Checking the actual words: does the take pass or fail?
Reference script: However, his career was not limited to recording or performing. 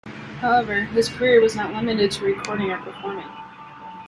pass